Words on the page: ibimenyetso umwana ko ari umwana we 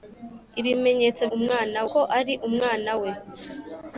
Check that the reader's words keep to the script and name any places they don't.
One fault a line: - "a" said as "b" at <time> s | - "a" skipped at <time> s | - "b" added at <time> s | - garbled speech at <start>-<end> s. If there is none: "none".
none